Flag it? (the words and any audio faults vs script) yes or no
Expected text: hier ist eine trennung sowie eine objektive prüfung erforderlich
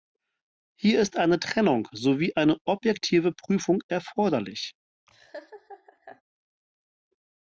yes